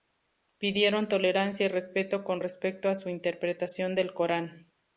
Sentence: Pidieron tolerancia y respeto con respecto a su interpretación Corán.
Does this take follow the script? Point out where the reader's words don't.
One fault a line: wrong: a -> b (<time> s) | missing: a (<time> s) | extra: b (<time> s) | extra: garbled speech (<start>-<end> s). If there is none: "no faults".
extra: del (4.0 s)